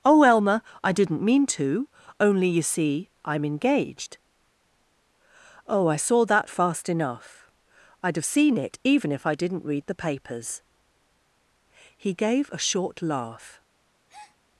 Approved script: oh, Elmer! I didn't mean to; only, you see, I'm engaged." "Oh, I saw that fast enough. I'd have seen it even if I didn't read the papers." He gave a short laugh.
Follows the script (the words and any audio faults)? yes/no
no